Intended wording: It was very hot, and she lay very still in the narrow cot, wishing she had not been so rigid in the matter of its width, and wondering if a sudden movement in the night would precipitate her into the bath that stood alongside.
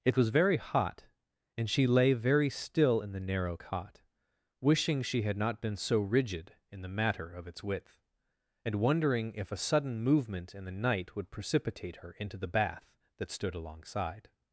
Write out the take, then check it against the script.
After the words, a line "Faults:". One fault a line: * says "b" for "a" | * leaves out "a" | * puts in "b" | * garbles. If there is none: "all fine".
It was very hot, and she lay very still in the narrow cot, wishing she had not been so rigid in the matter of its width, and wondering if a sudden movement in the night would precipitate her into the bath that stood alongside.
Faults:
all fine